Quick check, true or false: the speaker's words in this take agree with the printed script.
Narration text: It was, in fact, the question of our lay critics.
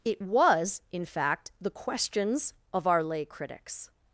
false